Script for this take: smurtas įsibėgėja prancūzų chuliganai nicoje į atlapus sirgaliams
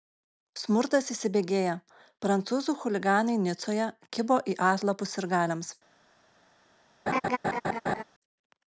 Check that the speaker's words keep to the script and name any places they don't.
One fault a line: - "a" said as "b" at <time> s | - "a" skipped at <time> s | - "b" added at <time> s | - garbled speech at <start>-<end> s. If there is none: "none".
- "kibo" added at 4.2 s